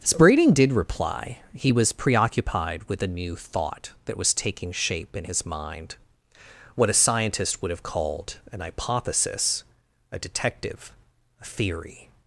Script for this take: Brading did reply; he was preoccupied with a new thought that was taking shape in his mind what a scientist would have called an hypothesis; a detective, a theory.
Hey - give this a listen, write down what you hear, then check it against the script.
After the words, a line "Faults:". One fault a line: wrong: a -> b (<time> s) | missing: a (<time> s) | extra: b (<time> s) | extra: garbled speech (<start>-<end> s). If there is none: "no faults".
Brading did reply; he was preoccupied with a new thought that was taking shape in his mind what a scientist would have called an hypothesis; a detective, a theory.
Faults:
no faults